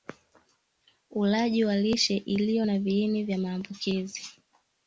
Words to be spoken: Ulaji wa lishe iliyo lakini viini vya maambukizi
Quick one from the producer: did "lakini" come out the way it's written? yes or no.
no